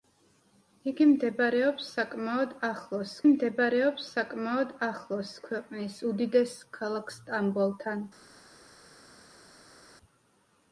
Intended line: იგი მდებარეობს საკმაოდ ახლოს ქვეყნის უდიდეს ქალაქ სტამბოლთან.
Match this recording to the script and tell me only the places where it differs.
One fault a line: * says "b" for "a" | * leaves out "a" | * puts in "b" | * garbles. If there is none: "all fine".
* puts in "მდებარეობს საკმაოდ ახლოს"